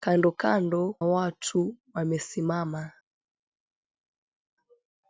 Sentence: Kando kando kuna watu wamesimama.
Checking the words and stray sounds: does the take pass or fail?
fail